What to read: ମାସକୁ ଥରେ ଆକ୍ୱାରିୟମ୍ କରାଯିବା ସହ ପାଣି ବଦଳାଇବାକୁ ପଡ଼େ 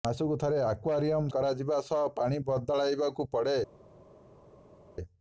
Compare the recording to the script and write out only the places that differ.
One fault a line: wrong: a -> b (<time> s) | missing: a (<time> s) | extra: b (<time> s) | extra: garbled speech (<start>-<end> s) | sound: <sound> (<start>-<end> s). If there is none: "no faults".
no faults